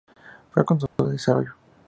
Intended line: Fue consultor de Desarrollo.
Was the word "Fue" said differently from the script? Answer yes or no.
no